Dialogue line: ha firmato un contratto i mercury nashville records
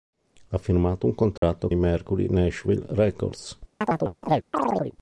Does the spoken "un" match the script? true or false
true